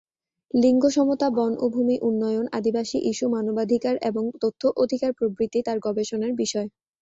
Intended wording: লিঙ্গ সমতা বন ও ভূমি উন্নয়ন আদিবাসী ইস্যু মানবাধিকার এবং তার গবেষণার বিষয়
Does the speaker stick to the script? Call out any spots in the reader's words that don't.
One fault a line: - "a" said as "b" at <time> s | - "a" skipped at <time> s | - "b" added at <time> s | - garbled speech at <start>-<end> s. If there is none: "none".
- "তথ্য অধিকার প্রভৃতি" added at 4.4 s